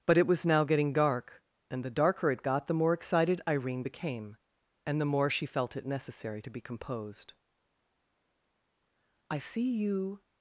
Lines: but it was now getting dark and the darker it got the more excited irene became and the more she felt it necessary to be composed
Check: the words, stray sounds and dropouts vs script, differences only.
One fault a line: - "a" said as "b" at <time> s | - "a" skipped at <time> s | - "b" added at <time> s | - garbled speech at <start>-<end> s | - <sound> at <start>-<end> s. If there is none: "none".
- "i see you" added at 9.3 s